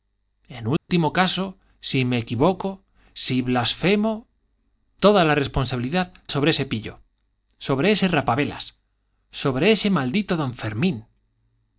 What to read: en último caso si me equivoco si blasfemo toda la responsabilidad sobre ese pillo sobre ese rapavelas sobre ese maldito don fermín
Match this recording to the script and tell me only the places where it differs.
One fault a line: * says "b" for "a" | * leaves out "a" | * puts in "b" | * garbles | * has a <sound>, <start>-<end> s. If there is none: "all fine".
* has a dropout, 0.8-0.9 s